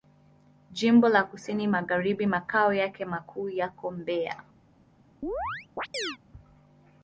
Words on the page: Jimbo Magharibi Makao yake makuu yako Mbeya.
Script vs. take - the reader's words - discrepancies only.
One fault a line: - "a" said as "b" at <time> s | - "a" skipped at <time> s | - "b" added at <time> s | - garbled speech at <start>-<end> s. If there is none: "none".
- "la Kusini" added at 1.1 s